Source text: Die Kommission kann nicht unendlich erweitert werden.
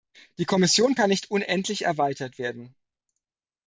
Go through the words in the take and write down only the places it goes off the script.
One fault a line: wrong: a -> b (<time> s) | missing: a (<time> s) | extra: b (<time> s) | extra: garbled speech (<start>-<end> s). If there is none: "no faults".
no faults